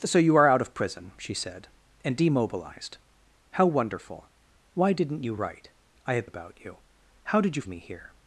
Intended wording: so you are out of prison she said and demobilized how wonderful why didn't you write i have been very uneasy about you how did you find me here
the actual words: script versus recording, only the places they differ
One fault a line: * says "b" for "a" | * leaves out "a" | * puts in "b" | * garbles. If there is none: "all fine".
* leaves out "been very uneasy"
* leaves out "find"